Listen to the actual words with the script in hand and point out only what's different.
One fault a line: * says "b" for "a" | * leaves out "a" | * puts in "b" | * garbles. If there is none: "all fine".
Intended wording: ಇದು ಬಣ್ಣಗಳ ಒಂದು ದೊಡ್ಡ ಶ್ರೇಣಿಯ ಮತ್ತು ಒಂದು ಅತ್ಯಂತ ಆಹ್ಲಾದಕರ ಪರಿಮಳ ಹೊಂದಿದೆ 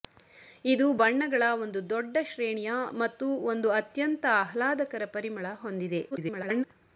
* garbles